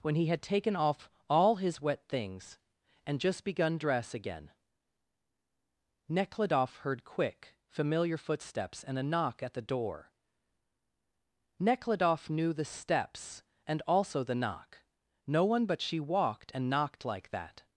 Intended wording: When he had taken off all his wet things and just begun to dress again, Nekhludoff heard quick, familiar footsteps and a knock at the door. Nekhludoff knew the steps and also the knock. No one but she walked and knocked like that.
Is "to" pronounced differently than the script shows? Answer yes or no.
yes